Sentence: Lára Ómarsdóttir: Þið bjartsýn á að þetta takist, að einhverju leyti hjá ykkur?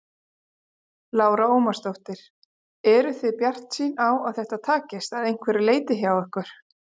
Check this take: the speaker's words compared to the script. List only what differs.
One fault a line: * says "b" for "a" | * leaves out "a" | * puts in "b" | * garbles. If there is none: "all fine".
* puts in "Eruð"